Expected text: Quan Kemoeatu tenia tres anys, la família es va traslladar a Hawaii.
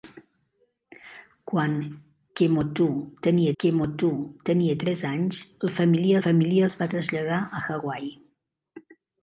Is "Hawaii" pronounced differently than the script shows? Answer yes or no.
no